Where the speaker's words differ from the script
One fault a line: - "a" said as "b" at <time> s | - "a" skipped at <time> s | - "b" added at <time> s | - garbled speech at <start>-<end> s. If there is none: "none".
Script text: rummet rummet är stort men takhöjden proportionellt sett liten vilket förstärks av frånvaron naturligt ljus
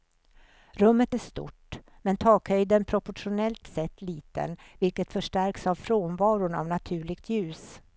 - "rummet" skipped at 1.1 s
- "av" added at 6.5 s